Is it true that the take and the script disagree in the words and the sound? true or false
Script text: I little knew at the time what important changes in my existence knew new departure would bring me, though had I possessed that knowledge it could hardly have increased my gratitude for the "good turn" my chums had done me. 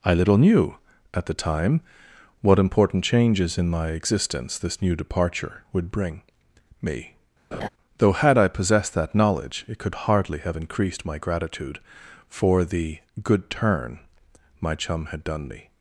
true